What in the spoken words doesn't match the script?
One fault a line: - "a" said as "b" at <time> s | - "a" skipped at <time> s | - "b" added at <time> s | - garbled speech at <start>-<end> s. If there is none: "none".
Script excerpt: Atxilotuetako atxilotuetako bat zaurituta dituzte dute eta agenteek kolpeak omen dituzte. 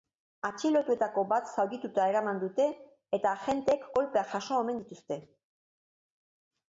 - "atxilotuetako" skipped at 1.2 s
- "dituzte" said as "eraman" at 2.1 s
- "jaso" added at 4.4 s